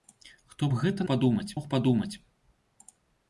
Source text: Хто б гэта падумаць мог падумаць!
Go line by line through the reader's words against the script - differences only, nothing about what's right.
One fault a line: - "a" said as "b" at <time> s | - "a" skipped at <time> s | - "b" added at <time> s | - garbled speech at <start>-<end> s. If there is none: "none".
none